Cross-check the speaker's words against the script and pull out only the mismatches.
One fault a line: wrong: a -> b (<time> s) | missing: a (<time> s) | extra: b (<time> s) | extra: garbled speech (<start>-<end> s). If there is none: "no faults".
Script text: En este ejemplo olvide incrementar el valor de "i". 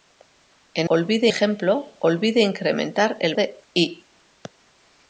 wrong: este -> olvide (0.9 s)
missing: valor (3.3 s)